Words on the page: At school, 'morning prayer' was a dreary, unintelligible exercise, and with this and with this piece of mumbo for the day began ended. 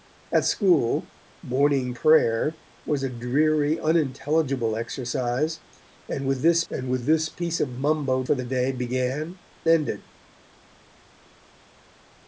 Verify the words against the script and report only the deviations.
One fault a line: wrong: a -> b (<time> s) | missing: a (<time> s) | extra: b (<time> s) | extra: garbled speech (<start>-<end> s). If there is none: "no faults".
no faults